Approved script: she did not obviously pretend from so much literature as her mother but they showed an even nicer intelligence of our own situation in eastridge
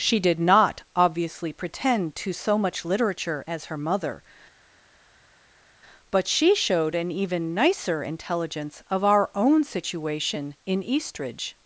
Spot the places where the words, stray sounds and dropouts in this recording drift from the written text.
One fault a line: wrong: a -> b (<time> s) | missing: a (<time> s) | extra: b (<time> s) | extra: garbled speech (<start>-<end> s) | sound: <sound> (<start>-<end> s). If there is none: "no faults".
wrong: from -> to (2.1 s)
wrong: they -> she (6.3 s)